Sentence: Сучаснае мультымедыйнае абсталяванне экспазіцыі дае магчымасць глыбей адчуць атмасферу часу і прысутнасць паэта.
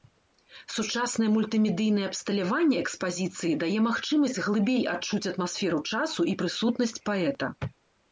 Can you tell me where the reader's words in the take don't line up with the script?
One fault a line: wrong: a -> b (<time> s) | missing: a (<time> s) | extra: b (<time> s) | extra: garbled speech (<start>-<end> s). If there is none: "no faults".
no faults